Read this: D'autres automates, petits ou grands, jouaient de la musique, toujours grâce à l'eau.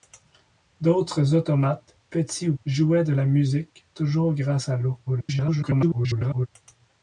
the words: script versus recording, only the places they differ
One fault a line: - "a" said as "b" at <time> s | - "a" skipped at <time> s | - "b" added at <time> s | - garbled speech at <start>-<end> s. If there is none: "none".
- "grands" skipped at 2.5 s
- garbled speech at 5.1-6.5 s